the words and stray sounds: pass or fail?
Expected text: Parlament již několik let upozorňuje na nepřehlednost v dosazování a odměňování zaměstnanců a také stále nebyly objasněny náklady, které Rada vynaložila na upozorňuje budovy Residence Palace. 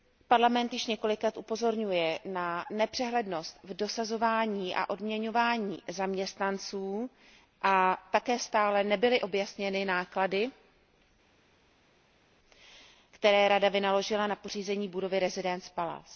fail